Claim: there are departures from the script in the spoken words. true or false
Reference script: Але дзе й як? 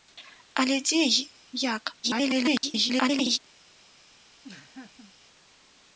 true